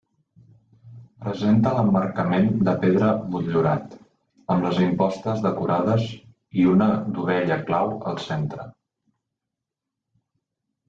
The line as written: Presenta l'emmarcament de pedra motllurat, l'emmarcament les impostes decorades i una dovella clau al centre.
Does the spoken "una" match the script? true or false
true